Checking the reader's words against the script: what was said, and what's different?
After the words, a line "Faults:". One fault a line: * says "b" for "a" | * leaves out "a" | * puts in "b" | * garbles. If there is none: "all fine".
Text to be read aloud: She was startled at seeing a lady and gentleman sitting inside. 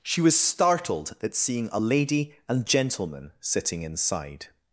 She was startled at seeing a lady and gentleman sitting inside.
Faults:
all fine